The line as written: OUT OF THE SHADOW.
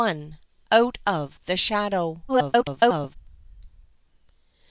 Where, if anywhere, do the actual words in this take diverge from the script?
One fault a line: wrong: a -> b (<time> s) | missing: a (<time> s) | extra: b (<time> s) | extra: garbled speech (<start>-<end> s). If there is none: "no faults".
extra: garbled speech (2.3-3.2 s)